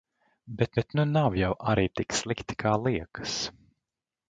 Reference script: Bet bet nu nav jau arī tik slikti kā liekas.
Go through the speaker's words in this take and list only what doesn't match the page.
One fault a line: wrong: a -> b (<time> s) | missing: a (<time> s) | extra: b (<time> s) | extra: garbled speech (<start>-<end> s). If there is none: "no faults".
no faults